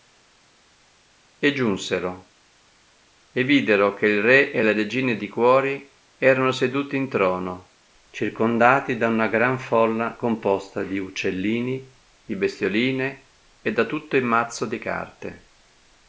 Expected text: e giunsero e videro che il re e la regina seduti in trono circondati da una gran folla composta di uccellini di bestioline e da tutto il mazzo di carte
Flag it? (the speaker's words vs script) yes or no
yes